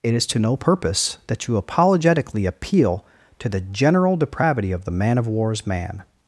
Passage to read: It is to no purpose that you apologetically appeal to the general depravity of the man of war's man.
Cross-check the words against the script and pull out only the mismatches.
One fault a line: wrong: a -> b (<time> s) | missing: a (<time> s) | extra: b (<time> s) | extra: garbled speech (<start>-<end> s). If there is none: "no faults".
no faults